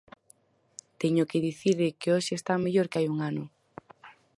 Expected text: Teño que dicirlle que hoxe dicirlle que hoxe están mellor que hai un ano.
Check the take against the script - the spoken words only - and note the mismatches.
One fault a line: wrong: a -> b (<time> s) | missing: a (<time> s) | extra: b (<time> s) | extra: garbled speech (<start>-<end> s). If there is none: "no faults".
missing: dicirlle que hoxe (2.3 s)